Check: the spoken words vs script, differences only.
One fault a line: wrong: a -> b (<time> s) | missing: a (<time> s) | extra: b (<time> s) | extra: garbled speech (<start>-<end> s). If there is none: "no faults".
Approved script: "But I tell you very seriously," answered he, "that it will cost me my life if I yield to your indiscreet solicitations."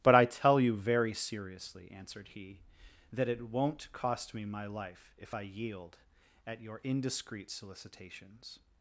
wrong: will -> won't (3.5 s)
wrong: to -> at (6.5 s)